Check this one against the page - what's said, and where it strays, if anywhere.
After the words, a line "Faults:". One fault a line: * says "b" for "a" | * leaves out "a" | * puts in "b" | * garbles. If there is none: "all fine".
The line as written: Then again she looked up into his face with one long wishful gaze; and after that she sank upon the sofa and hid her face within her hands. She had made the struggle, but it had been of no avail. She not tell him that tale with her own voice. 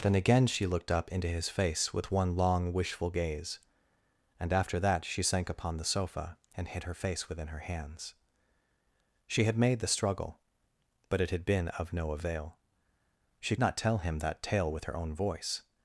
Then again she looked up into his face with one long wishful gaze; and after that she sank upon the sofa and hid her face within her hands. She had made the struggle, but it had been of no avail. She not tell him that tale with her own voice.
Faults:
all fine